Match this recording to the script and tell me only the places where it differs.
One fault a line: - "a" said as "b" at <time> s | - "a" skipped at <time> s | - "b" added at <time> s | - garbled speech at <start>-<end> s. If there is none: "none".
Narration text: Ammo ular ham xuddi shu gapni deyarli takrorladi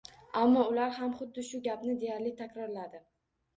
none